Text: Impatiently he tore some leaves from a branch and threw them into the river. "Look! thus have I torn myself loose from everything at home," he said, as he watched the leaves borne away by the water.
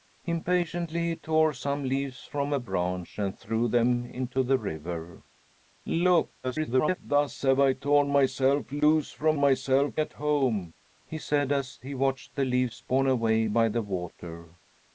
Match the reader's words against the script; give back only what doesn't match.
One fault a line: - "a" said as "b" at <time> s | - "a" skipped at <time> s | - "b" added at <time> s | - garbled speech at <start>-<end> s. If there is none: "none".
- garbled speech at 6.4-7.0 s
- "everything" said as "myself" at 9.4 s